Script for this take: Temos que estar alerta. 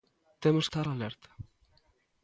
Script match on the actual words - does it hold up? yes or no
no